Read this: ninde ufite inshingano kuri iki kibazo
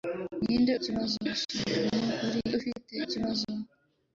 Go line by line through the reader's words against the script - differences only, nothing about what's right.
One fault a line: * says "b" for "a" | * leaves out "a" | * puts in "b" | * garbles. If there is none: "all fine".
* says "kibazo" for "ufite"
* says "ufite" for "iki"